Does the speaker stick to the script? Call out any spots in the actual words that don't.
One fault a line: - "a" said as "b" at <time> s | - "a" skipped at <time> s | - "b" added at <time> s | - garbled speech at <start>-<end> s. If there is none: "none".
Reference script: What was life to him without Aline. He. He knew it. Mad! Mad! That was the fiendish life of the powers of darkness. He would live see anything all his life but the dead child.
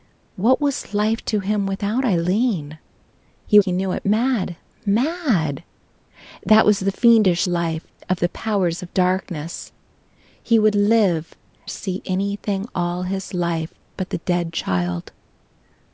none